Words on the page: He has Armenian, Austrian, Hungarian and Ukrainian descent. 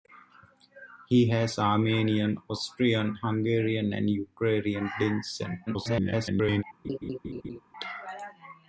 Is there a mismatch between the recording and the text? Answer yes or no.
yes